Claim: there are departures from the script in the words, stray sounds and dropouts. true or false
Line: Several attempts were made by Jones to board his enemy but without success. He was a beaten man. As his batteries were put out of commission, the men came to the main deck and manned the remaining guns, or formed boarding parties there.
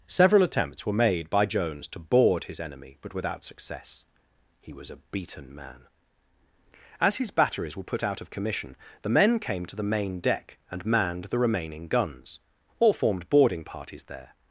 false